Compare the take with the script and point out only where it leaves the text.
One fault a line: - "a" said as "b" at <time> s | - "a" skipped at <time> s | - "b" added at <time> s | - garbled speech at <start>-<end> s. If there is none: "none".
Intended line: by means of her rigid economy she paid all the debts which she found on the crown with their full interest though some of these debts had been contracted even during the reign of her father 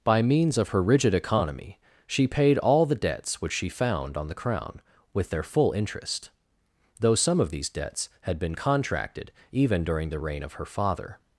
none